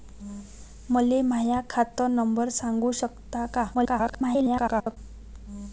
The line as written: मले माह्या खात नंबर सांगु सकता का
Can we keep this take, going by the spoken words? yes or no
no